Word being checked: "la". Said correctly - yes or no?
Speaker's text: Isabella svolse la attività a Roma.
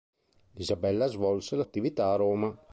yes